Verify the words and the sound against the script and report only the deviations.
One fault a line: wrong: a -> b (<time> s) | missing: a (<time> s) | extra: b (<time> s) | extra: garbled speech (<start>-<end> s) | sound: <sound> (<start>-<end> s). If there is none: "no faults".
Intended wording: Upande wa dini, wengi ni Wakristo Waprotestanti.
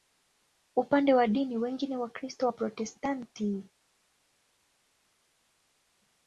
no faults